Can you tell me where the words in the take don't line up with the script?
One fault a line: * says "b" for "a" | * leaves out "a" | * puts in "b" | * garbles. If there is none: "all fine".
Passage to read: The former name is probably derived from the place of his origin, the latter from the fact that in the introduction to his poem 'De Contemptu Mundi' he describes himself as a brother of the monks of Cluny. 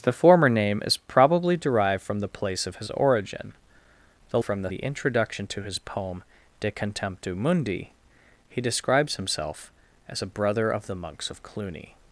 * leaves out "latter"
* leaves out "fact that in"